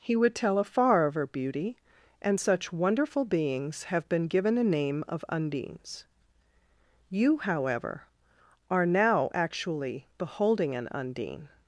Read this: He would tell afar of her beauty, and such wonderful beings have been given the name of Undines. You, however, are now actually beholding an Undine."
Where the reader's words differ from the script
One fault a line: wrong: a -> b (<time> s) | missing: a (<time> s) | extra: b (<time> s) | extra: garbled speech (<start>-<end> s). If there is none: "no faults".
wrong: the -> a (4.6 s)